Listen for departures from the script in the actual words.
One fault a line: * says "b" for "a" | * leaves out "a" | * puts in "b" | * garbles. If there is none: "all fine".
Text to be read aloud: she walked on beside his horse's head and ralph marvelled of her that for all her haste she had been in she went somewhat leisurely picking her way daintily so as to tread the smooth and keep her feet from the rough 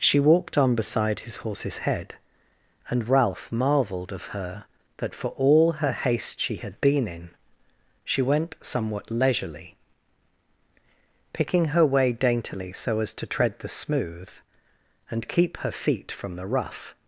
all fine